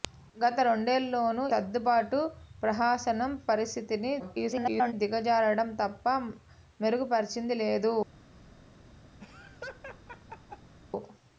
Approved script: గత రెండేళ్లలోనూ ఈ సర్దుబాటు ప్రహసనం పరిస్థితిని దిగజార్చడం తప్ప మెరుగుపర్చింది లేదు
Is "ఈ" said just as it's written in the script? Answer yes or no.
no